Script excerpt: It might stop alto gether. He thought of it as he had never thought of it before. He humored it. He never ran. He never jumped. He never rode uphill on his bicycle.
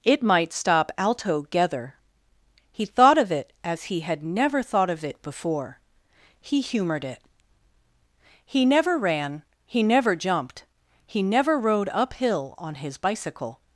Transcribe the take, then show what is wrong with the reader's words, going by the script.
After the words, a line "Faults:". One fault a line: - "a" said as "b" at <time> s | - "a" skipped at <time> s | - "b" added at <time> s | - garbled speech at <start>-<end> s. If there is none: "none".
It might stop alto gether. He thought of it as he had never thought of it before. He humored it. He never ran. He never jumped. He never rode uphill on his bicycle.
Faults:
none